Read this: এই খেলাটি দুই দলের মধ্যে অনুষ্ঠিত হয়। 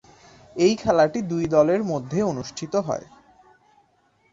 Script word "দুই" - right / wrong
right